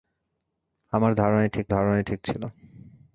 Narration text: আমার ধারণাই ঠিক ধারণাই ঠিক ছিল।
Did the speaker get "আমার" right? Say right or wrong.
right